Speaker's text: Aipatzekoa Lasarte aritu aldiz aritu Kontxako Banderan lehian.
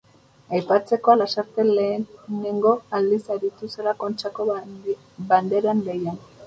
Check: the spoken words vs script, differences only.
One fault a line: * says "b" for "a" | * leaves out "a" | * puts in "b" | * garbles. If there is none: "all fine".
* says "lehenengo" for "aritu"
* puts in "zela"